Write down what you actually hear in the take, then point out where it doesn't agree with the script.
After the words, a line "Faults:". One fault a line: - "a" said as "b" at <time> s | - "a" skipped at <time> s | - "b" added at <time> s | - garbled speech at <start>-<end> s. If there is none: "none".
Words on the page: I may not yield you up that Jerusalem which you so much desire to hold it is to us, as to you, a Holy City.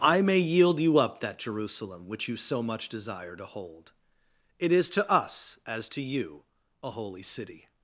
I may yield you up that Jerusalem which you so much desire to hold it is to us, as to you, a Holy City.
Faults:
- "not" skipped at 0.4 s